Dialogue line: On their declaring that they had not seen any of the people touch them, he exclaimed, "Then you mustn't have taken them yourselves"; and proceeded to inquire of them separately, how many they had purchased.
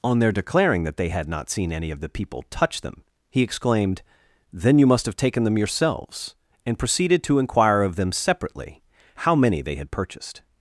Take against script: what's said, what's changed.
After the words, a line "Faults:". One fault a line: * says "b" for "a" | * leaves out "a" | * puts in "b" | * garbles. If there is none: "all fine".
On their declaring that they had not seen any of the people touch them, he exclaimed, "Then you must have taken them yourselves"; and proceeded to inquire of them separately, how many they had purchased.
Faults:
* says "must" for "mustn't"